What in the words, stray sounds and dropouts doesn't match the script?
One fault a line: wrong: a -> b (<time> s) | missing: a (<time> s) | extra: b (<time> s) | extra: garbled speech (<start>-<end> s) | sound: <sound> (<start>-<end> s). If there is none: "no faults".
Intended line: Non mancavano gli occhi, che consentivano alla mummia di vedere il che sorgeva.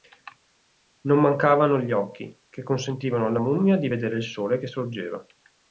extra: sole (4.2 s)